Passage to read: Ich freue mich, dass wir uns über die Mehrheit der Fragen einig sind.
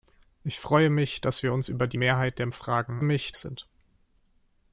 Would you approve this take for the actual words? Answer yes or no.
no